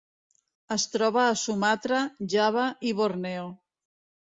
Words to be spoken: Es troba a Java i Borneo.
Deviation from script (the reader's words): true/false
true